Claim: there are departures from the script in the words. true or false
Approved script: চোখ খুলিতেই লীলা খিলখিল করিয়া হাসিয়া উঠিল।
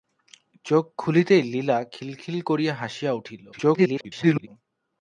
true